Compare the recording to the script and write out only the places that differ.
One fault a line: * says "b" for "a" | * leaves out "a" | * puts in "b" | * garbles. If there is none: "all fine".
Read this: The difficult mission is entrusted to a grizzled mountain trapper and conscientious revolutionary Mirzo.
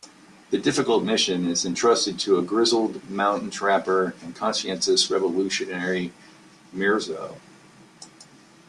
all fine